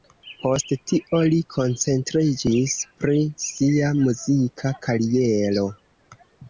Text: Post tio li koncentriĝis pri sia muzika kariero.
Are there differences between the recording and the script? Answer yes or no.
no